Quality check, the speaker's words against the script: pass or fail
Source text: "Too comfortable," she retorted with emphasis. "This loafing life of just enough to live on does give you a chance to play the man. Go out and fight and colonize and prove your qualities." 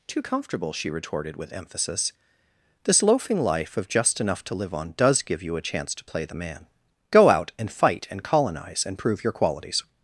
pass